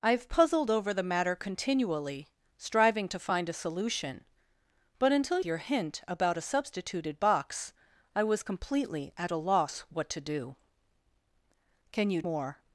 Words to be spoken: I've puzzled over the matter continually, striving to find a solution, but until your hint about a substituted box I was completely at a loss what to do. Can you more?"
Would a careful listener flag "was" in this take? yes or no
no